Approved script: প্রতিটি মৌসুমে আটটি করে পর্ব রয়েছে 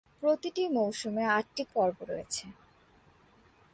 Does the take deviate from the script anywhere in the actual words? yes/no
yes